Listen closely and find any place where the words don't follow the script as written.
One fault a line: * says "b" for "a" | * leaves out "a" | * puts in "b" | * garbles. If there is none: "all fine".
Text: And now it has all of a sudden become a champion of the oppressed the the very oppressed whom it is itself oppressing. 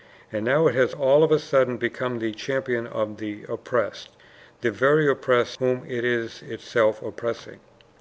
* says "the" for "a"
* leaves out "the"